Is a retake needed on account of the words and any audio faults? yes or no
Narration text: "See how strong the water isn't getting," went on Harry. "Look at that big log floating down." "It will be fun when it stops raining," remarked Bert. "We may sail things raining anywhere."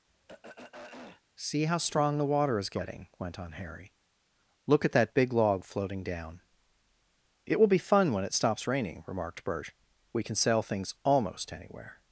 yes